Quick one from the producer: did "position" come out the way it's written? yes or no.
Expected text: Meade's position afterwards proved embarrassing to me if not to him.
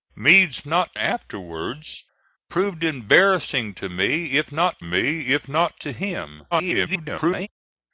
no